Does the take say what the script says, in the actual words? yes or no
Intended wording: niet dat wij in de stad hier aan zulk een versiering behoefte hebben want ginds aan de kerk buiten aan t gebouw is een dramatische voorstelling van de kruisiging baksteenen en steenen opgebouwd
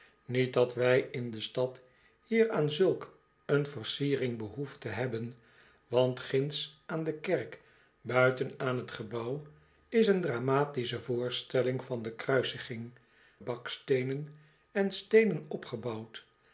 yes